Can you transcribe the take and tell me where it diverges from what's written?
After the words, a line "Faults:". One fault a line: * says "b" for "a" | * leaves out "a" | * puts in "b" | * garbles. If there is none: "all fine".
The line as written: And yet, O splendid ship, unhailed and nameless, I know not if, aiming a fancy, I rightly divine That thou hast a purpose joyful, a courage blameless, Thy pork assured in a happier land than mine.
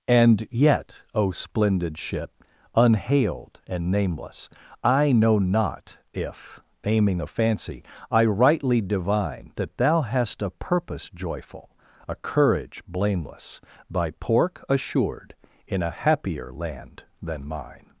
And yet, O splendid ship, unhailed and nameless, I know not if, aiming a fancy, I rightly divine That thou hast a purpose joyful, a courage blameless, Thy pork assured in a happier land than mine.
Faults:
all fine